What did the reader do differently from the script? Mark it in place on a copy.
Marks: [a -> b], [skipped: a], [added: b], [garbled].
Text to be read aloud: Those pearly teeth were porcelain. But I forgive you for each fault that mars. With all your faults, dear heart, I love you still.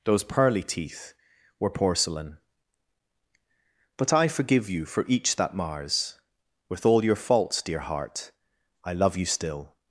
Those pearly teeth were porcelain. But I forgive you for each [skipped: fault] that mars. With all your faults, dear heart, I love you still.